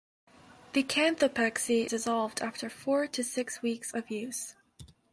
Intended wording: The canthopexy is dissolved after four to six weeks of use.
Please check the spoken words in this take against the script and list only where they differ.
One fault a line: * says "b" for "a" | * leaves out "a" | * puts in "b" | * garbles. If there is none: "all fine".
* leaves out "is"